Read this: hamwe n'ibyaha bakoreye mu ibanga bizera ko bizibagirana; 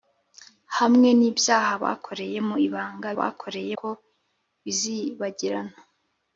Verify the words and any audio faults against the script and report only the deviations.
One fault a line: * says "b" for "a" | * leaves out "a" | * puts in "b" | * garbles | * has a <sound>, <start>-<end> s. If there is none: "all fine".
* says "bakoreye" for "bizera"